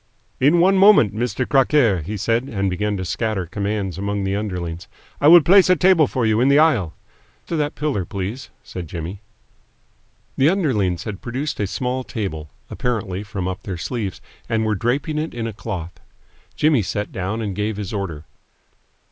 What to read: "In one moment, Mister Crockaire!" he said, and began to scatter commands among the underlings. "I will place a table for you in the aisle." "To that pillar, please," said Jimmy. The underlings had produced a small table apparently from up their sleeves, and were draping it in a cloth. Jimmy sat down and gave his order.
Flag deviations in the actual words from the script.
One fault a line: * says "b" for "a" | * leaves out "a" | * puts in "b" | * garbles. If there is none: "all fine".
all fine